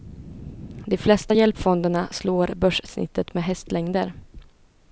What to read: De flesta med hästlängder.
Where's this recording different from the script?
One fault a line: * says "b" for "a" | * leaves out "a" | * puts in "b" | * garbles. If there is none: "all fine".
* puts in "hjälpfonderna slår börssnittet"